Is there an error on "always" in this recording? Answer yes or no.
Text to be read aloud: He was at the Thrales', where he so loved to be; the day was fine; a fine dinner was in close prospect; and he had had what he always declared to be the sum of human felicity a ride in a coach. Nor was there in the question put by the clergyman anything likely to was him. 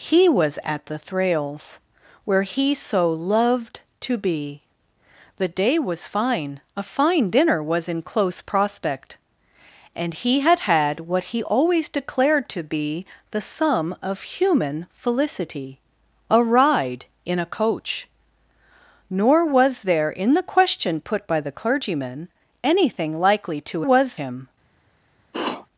no